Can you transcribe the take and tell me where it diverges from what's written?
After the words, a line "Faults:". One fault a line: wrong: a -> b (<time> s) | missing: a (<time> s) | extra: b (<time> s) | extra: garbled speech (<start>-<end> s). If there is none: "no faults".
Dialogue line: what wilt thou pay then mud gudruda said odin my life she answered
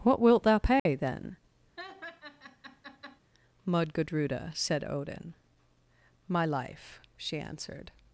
what wilt thou pay then mud gudruda said odin my life she answered
Faults:
no faults